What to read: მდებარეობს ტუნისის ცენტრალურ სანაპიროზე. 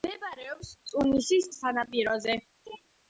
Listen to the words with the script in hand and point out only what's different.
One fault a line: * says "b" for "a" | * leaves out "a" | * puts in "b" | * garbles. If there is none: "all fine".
* leaves out "ცენტრალურ"